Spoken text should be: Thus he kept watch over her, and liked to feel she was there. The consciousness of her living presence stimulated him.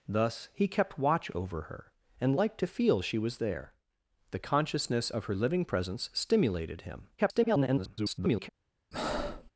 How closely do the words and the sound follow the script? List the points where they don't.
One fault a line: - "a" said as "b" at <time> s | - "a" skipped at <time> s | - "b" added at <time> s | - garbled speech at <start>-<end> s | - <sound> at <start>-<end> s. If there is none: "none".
- garbled speech at 7.2-8.5 s
- breath at 8.9-9.5 s